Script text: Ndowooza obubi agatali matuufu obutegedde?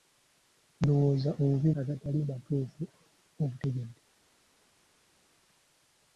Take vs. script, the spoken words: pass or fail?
pass